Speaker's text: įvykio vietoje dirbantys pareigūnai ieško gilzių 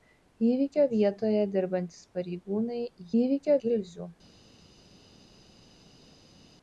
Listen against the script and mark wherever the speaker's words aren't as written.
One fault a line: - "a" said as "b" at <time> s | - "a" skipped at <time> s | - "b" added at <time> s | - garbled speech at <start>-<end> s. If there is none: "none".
- "ieško" said as "įvykio" at 3.2 s